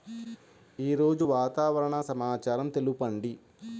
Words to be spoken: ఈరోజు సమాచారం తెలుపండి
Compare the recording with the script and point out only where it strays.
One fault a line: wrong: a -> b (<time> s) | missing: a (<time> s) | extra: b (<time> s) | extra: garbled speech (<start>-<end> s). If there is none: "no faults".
extra: వాతావరణ (1.2 s)